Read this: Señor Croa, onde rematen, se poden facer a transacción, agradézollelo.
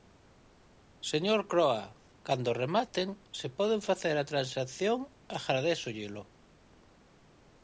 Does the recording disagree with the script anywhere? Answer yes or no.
yes